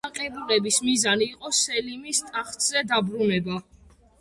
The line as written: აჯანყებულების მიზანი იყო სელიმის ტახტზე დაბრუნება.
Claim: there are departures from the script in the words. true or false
false